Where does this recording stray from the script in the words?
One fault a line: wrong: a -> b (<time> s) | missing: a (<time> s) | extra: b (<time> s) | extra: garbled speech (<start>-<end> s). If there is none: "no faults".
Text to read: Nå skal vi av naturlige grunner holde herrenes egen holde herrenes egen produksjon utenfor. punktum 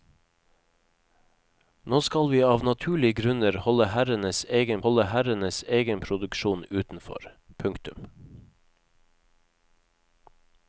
no faults